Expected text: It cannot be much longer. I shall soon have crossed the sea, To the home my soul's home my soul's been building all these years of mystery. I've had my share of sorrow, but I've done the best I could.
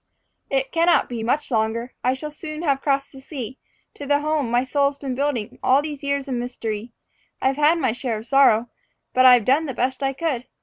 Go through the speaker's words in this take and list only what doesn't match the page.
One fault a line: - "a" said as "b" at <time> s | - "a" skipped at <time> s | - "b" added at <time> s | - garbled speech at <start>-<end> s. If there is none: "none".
- "home my soul's" skipped at 5.0 s